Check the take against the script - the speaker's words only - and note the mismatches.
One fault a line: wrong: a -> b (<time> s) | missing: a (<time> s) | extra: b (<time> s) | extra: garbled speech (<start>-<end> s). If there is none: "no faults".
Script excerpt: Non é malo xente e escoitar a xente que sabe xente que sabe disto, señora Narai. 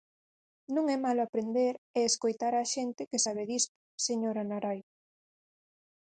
wrong: xente -> aprender (1.2 s)
missing: xente que sabe (3.4 s)